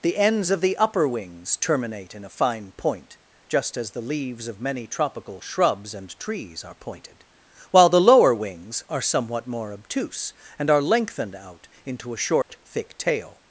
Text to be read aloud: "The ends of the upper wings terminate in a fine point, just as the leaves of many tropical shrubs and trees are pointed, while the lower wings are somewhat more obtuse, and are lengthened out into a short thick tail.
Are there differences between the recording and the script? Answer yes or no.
no